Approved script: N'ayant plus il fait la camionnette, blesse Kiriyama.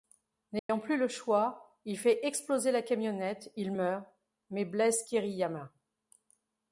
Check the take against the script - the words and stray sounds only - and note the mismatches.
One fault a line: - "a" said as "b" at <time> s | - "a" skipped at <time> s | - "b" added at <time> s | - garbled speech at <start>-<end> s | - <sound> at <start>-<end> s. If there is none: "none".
- dropout at 0.6-0.7 s
- "le choix" added at 1.0 s
- "exploser" added at 2.2 s
- "il meurt mais" added at 3.6 s